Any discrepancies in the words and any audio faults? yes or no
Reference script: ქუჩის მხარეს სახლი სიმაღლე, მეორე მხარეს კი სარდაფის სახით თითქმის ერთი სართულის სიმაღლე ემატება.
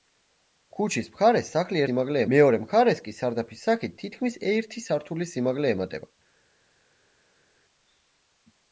no